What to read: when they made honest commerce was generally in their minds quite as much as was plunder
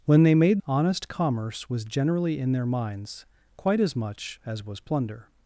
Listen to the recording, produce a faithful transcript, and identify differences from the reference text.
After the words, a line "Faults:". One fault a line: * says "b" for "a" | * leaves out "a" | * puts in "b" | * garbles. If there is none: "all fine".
when they made honest commerce was generally in their minds quite as much as was plunder
Faults:
all fine